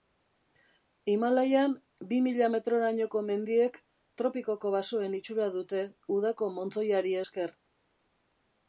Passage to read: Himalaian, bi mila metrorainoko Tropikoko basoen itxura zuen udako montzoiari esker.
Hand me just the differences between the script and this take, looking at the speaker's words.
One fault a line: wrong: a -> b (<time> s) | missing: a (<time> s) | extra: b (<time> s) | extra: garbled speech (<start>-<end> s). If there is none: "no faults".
extra: mendiek (3.3 s)
wrong: zuen -> dute (5.6 s)